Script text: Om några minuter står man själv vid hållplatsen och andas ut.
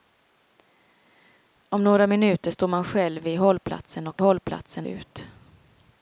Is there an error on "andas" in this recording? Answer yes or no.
yes